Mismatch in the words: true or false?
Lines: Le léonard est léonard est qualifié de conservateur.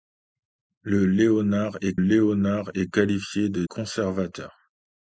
false